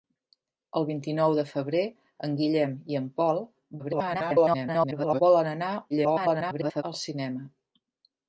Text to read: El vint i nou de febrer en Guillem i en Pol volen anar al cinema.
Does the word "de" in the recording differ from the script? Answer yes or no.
no